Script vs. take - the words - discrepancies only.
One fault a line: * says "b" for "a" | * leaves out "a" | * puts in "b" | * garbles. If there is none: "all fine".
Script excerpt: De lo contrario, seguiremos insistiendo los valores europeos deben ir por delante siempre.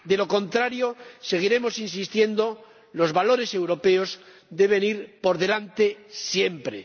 all fine